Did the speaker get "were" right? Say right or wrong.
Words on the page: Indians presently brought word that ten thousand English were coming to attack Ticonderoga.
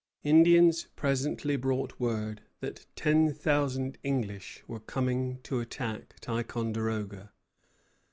right